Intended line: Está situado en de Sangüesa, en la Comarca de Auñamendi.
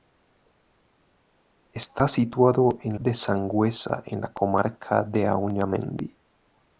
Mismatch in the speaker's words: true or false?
false